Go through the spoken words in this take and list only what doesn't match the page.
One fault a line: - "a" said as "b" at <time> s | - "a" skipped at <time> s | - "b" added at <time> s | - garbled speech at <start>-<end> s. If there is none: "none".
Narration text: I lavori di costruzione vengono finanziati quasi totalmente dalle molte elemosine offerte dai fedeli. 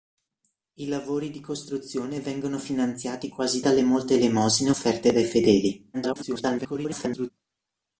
- "totalmente" skipped at 3.6 s
- garbled speech at 5.9-7.3 s